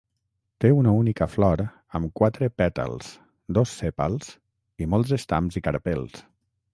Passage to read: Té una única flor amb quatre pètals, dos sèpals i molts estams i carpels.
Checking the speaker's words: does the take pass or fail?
pass